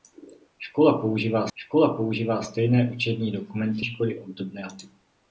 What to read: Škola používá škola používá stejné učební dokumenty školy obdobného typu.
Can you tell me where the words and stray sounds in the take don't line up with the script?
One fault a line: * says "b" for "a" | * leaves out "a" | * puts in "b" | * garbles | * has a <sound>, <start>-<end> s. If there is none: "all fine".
all fine